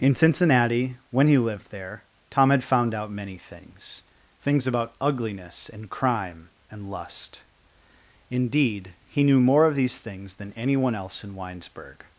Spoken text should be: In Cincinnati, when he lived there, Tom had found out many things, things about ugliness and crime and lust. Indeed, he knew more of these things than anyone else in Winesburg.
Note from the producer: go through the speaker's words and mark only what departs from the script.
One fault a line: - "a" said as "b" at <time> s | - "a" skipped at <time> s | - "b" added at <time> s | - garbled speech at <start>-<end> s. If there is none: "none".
none